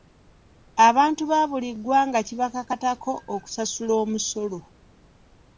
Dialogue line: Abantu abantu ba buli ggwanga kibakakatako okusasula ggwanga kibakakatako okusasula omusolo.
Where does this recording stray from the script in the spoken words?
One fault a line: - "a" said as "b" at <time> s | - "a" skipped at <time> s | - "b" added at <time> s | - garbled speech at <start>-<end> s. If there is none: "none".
- "abantu" skipped at 1.2 s
- "ggwanga kibakakatako okusasula" skipped at 3.9 s